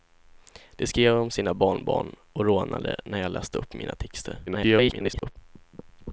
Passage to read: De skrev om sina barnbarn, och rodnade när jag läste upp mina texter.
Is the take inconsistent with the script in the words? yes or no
yes